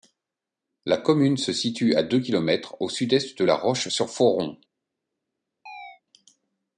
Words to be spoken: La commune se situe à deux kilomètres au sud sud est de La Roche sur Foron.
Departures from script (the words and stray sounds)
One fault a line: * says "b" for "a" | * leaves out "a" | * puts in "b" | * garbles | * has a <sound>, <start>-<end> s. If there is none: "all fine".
* leaves out "sud"
* has a chirp, 5.7-6.0 s